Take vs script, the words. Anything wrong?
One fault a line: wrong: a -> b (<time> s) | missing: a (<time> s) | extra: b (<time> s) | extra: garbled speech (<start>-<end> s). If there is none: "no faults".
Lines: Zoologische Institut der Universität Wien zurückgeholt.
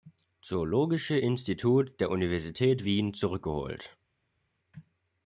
no faults